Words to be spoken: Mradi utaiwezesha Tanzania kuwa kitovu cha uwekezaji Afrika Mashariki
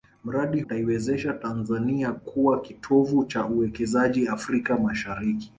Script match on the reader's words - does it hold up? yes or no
yes